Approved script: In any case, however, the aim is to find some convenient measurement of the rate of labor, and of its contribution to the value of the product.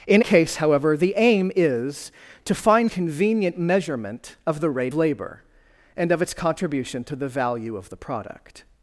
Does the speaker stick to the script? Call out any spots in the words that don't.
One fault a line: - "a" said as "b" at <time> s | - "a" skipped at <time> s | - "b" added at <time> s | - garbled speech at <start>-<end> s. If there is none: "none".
- "any" skipped at 0.2 s
- "some" skipped at 2.9 s
- "of" skipped at 4.9 s